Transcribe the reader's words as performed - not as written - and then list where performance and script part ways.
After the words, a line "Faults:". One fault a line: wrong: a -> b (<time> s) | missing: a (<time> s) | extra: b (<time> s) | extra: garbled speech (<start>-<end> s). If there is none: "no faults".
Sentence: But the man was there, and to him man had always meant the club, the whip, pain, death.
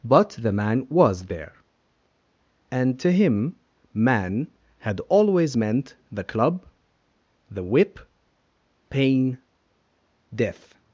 But the man was there, and to him man had always meant the club, the whip, pain, death.
Faults:
no faults